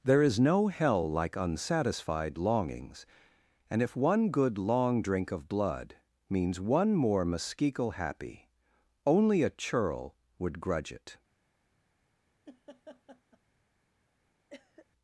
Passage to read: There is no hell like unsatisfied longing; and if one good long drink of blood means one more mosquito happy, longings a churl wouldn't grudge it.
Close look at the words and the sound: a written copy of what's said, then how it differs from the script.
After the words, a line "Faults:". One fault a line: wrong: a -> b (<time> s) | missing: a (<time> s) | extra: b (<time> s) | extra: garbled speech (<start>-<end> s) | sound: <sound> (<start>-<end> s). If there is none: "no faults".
There is no hell like unsatisfied longings; and if one good long drink of blood means one more mosquito happy, only a churl would grudge it.
Faults:
wrong: longing -> longings (2.4 s)
wrong: longings -> only (9.1 s)
wrong: wouldn't -> would (10.4 s)
sound: laugh (12.5-13.4 s)
sound: cough (14.5-14.9 s)